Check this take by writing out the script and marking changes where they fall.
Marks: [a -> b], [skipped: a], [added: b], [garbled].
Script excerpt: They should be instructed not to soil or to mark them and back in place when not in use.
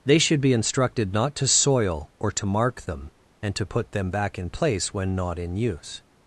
They should be instructed not to soil or to mark them and [added: to put them] back in place when not in use.